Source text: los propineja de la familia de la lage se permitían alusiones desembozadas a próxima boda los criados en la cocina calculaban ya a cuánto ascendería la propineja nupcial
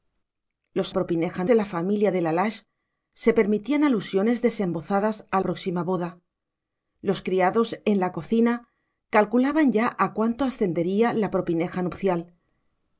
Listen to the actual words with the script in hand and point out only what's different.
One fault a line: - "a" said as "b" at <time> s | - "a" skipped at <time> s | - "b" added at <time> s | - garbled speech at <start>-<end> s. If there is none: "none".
none